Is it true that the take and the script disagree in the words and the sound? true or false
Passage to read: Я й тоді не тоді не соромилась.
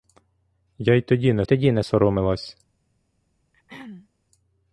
true